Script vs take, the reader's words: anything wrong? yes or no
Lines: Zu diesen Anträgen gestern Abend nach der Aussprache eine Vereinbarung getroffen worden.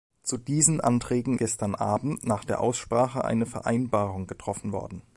no